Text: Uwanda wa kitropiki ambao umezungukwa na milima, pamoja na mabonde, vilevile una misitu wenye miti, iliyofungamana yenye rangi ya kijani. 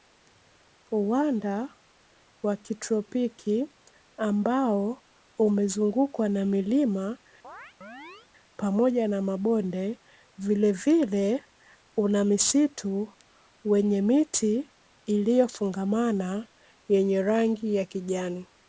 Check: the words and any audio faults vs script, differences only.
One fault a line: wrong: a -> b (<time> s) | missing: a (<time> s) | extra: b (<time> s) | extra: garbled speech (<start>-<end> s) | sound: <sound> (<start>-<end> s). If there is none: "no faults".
sound: chirp (7.4-8.3 s)